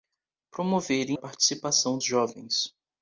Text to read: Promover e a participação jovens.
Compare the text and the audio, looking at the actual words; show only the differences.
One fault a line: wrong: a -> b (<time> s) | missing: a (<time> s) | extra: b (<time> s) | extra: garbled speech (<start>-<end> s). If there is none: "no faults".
no faults